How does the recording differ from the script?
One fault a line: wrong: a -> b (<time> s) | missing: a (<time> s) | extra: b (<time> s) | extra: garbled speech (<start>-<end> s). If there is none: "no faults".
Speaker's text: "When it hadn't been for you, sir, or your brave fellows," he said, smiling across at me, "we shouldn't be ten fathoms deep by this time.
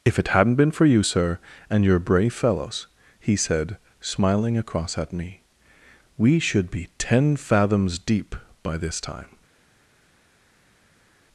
wrong: When -> If (0.0 s)
wrong: or -> and (1.7 s)
wrong: shouldn't -> should (6.4 s)